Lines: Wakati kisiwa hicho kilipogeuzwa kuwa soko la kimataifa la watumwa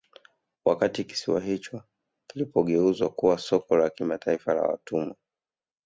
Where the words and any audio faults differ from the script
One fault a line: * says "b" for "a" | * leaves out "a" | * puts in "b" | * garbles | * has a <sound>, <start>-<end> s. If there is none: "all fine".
all fine